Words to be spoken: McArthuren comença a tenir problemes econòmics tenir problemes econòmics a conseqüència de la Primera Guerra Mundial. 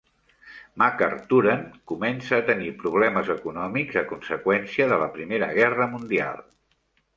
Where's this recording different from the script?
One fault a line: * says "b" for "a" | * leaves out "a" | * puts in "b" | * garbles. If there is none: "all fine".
* leaves out "tenir problemes econòmics"